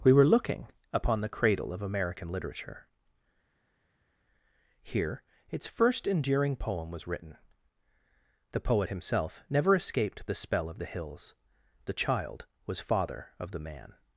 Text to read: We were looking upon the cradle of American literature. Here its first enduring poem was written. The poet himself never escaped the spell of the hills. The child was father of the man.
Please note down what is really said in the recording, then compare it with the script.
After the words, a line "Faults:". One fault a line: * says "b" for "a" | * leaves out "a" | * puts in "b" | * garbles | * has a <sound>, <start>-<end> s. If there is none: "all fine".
We were looking upon the cradle of American literature. Here its first enduring poem was written. The poet himself never escaped the spell of the hills. The child was father of the man.
Faults:
all fine